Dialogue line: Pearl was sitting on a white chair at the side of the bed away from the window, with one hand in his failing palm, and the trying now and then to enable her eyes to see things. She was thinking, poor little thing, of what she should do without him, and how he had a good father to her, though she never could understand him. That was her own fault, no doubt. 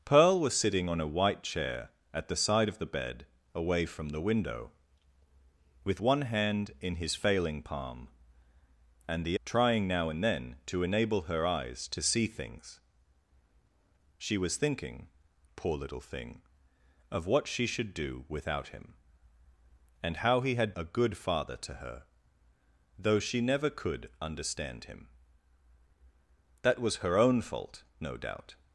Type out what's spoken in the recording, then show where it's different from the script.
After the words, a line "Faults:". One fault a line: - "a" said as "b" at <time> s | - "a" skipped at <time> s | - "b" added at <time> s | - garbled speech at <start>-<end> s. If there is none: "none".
Pearl was sitting on a white chair at the side of the bed away from the window, with one hand in his failing palm, and the trying now and then to enable her eyes to see things. She was thinking, poor little thing, of what she should do without him, and how he had a good father to her, though she never could understand him. That was her own fault, no doubt.
Faults:
none